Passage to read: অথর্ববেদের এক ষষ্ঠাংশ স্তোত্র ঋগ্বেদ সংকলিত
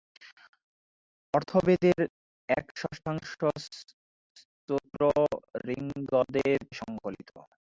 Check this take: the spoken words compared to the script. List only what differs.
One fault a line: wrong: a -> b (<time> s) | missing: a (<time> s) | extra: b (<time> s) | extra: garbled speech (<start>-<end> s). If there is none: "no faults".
no faults